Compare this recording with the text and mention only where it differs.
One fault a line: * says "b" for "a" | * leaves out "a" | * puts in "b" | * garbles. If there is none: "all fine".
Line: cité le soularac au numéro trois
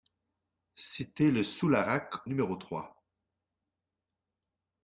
* leaves out "au"